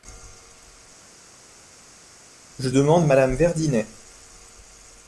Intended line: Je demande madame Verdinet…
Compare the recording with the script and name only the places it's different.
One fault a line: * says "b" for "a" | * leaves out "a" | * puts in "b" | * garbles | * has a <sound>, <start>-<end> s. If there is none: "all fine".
all fine